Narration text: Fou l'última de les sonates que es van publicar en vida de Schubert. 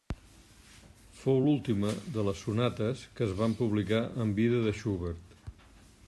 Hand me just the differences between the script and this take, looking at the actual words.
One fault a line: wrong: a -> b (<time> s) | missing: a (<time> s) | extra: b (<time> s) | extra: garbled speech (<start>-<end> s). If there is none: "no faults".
no faults